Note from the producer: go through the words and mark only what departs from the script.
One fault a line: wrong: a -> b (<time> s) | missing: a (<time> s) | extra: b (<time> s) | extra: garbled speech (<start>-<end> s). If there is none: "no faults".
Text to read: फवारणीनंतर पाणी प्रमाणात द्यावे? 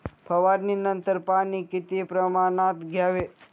extra: किती (1.6 s)